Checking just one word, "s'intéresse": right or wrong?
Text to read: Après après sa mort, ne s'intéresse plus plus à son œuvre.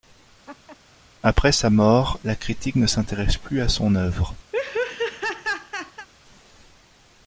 right